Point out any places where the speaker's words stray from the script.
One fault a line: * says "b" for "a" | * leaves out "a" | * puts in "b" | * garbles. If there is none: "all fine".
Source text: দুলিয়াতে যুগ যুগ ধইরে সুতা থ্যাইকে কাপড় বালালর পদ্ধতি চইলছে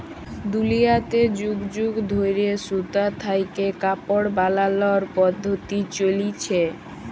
all fine